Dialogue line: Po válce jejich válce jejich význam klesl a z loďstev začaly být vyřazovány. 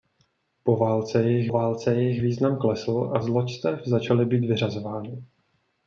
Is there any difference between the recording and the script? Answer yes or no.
no